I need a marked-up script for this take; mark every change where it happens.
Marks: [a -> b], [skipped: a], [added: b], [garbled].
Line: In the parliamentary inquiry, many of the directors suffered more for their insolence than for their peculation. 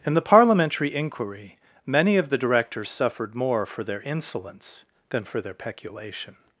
In the parliamentary inquiry, many of the directors suffered more for their insolence than for their peculation.